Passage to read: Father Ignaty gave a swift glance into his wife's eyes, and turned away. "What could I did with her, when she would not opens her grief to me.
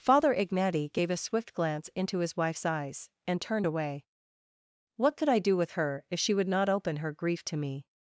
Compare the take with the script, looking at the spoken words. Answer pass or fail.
fail